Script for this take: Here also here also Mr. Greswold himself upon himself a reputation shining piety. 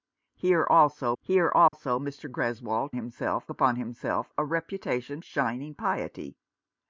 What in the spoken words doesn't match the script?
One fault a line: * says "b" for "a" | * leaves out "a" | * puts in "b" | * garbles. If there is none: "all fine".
all fine